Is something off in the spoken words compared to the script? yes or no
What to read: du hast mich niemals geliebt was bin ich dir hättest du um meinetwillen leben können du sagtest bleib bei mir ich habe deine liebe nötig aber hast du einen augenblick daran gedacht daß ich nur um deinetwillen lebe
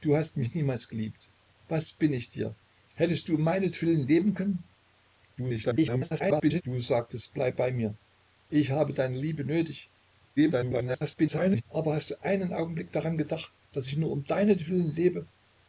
yes